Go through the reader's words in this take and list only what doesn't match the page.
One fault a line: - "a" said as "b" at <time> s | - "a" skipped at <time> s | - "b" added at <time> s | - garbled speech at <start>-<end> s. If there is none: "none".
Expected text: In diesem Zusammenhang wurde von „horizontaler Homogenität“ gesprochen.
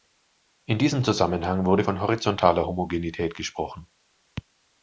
none